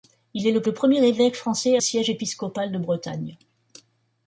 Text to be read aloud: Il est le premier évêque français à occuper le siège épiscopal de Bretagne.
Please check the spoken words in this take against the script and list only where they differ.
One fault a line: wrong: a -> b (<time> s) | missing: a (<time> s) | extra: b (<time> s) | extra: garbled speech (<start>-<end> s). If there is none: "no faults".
extra: le (0.6 s)
missing: à occuper le (1.8 s)